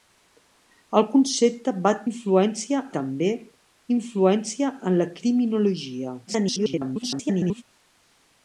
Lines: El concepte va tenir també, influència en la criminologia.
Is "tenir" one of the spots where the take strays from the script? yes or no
yes